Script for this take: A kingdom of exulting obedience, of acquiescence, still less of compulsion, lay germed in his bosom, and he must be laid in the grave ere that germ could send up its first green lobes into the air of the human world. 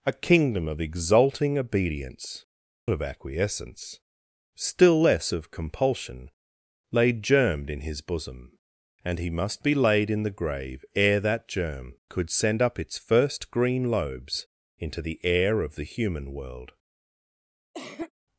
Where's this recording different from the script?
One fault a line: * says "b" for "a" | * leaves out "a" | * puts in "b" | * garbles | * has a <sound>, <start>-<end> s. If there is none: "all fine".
* has a cough, 17.7-18.1 s